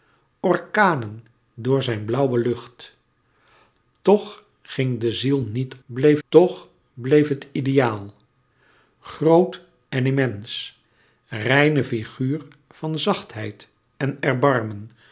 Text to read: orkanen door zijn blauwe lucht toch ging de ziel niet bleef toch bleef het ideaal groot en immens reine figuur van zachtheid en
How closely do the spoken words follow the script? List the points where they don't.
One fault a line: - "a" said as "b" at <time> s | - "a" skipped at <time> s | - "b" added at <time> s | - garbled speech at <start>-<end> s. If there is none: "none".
none